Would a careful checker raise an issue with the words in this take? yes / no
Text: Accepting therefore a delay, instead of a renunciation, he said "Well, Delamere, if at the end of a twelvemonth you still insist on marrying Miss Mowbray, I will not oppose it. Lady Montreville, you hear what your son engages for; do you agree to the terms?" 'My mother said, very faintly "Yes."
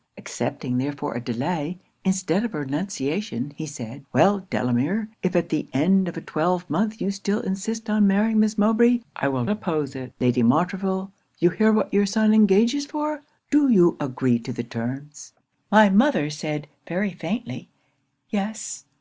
yes